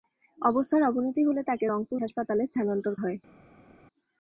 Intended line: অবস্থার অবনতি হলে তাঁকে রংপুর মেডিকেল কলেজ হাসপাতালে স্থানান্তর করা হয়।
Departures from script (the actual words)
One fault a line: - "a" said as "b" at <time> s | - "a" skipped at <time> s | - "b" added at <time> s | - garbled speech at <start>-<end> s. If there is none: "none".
- "মেডিকেল কলেজ" skipped at 2.0 s
- "করা" skipped at 2.9 s